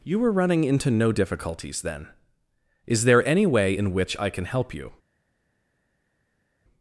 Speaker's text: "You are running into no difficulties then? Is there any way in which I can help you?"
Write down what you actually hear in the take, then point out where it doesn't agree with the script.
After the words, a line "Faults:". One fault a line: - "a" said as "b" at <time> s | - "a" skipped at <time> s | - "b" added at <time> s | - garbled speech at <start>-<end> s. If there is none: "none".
"You were running into no difficulties then? Is there any way in which I can help you?"
Faults:
- "are" said as "were" at 0.2 s